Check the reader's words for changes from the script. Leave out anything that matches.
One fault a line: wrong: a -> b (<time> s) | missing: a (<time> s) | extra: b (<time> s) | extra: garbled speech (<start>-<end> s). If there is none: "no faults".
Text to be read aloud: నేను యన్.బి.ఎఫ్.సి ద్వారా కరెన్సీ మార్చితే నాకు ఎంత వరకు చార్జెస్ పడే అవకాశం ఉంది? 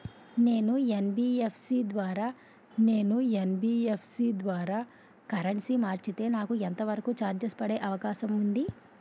extra: నేను యన్.బి.ఎఫ్.సి ద్వారా (2.8 s)